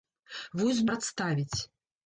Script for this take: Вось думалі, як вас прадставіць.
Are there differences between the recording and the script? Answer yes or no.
yes